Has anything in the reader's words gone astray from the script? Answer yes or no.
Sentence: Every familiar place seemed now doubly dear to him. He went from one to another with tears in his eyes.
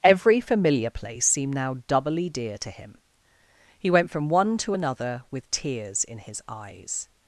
no